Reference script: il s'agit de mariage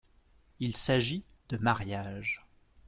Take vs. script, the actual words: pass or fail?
pass